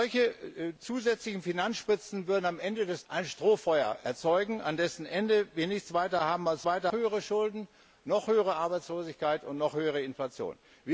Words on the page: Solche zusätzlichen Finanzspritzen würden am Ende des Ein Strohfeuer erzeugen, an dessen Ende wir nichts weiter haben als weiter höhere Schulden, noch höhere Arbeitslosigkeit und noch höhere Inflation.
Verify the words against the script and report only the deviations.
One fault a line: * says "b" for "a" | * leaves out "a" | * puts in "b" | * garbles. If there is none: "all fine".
all fine